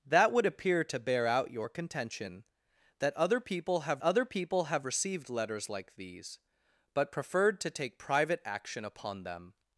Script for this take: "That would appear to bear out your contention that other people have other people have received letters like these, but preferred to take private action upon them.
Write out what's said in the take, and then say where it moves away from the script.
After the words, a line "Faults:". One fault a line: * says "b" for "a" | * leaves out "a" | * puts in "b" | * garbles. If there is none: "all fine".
"That would appear to bear out your contention that other people have other people have received letters like these, but preferred to take private action upon them.
Faults:
all fine